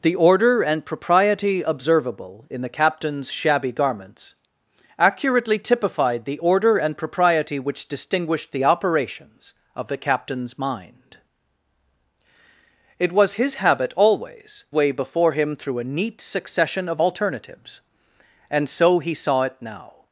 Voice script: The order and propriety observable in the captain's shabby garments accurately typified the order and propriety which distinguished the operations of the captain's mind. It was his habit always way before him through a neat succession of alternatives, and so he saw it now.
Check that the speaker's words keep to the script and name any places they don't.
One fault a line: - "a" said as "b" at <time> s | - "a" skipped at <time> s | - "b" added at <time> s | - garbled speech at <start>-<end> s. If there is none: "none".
none